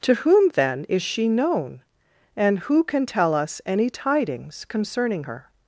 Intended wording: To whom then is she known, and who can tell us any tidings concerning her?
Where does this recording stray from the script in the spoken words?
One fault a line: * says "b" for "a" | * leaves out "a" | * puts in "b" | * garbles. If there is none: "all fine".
all fine